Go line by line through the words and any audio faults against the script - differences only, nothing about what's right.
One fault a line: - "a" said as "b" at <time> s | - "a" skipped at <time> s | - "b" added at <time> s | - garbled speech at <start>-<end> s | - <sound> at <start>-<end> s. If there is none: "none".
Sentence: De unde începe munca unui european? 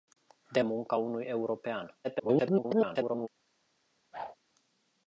- "unde începe" skipped at 0.6 s
- garbled speech at 2.0-3.3 s
- whoosh at 4.1-4.4 s